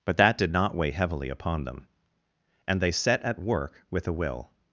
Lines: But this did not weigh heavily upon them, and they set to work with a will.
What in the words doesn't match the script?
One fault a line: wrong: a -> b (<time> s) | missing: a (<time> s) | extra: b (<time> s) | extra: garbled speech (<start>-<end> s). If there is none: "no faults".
wrong: this -> that (0.2 s)
wrong: to -> at (3.2 s)